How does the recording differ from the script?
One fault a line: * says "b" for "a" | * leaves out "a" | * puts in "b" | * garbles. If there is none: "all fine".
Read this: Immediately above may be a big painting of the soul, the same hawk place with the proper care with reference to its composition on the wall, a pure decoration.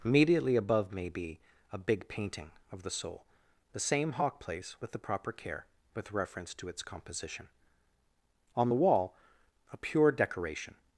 all fine